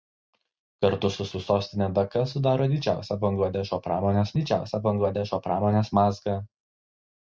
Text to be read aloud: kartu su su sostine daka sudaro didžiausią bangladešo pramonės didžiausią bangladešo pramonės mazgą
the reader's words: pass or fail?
pass